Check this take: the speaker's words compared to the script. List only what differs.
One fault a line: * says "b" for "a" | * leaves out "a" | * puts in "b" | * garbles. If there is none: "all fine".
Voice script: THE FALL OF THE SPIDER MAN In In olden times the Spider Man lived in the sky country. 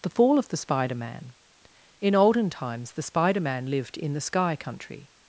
* leaves out "In"